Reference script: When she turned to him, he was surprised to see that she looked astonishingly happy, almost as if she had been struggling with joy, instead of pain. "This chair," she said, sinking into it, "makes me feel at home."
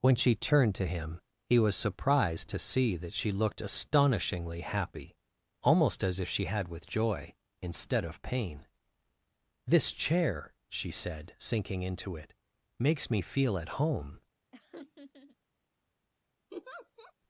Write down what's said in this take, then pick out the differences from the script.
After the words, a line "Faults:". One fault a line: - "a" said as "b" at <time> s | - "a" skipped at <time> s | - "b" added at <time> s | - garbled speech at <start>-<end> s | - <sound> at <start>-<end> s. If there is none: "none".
When she turned to him, he was surprised to see that she looked astonishingly happy, almost as if she had with joy, instead of pain. "This chair," she said, sinking into it, "makes me feel at home."
Faults:
- "been struggling" skipped at 6.7 s
- laugh at 14.5-15.4 s
- laugh at 16.5-17.1 s